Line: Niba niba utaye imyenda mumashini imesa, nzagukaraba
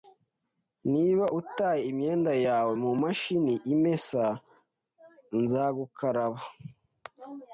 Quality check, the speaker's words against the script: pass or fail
fail